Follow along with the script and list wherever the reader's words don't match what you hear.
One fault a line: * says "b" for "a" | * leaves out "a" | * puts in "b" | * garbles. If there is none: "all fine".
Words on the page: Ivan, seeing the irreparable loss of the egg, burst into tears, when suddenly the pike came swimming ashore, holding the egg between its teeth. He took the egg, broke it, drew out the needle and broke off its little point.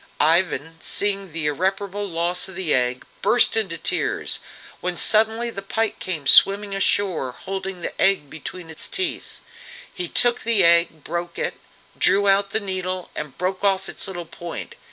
all fine